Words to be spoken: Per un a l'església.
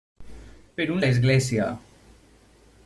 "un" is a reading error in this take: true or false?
false